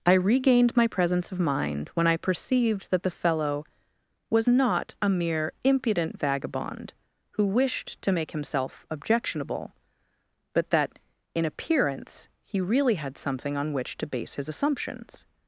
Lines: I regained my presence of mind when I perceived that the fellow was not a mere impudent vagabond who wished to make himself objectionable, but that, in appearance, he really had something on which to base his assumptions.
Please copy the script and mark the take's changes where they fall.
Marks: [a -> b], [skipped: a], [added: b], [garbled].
I regained my presence of mind when I perceived that the fellow was not a mere impudent vagabond who wished to make himself objectionable, but that, in appearance, he really had something on which to base his assumptions.